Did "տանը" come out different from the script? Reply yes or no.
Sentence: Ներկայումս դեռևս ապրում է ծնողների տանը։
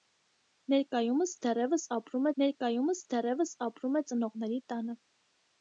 no